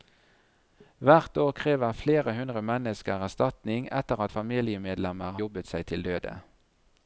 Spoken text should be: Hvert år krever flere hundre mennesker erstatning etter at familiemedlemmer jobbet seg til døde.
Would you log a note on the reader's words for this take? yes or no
no